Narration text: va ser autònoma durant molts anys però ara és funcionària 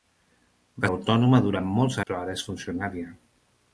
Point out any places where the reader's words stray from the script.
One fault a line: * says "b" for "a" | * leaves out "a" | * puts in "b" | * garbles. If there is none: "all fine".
* leaves out "ser"
* leaves out "anys"